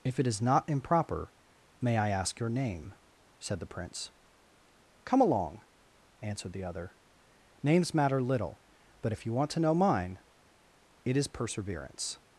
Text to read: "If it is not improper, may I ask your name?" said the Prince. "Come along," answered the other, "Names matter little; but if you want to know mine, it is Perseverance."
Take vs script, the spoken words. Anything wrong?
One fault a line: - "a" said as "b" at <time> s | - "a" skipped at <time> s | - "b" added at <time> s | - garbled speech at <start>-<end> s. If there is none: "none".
none